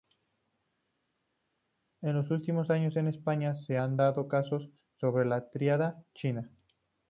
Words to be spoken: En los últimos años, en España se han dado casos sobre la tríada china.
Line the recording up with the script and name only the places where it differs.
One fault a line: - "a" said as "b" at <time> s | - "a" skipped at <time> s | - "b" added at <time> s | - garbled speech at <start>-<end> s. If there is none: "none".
none